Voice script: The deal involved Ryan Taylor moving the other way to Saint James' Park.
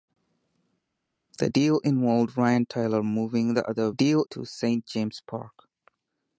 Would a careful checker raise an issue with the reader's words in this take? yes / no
yes